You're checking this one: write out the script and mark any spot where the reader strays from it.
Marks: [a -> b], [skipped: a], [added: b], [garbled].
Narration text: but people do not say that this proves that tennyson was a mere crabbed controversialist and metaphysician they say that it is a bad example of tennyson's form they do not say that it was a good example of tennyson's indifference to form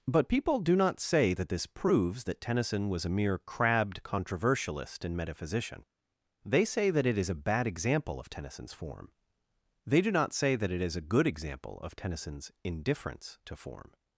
but people do not say that this proves that tennyson was a mere crabbed controversialist and metaphysician they say that it is a bad example of tennyson's form they do not say that it [was -> is] a good example of tennyson's indifference to form